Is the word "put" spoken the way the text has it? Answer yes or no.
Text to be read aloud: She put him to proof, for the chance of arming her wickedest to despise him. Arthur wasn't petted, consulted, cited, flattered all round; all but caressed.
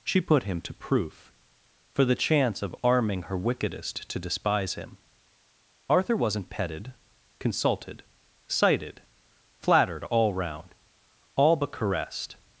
yes